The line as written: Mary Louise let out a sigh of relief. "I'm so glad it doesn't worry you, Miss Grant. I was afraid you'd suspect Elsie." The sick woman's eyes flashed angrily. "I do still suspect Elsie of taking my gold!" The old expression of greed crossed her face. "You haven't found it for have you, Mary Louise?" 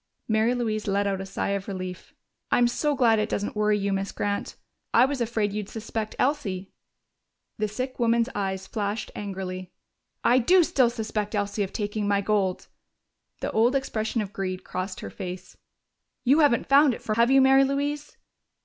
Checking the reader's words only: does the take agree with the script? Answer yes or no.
yes